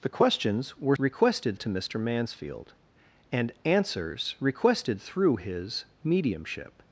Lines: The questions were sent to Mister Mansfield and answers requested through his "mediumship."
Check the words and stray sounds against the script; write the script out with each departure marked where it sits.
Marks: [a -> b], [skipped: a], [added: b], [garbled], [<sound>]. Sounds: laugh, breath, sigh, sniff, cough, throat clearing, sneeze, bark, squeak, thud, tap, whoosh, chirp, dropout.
The questions were [sent -> requested] to Mister Mansfield and answers requested through his "mediumship."